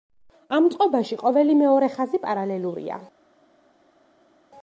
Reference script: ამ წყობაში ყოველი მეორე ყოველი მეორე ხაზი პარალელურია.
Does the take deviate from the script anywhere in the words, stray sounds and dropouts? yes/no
yes